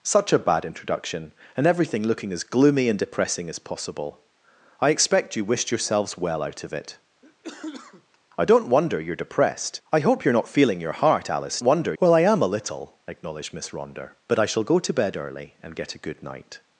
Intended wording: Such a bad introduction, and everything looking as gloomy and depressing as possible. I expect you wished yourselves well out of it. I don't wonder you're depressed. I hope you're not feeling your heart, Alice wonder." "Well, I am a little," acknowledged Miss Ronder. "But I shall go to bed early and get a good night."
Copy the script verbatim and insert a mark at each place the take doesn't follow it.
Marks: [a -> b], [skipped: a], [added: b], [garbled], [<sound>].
Such a bad introduction, and everything looking as gloomy and depressing as possible. I expect you wished yourselves well out of it. [cough] I don't wonder you're depressed. I hope you're not feeling your heart, Alice wonder." "Well, I am a little," acknowledged Miss Ronder. "But I shall go to bed early and get a good night."